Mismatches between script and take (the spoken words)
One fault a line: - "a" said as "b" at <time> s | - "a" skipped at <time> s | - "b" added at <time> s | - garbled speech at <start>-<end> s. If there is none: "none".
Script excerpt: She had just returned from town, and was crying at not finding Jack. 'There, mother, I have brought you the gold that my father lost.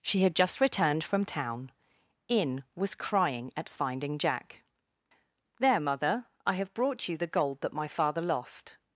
- "and" said as "in" at 2.3 s
- "not" skipped at 3.7 s